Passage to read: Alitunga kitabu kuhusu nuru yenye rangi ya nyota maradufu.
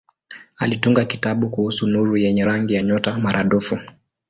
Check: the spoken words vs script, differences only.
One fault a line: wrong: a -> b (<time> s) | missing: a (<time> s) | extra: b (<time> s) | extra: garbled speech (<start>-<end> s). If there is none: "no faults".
no faults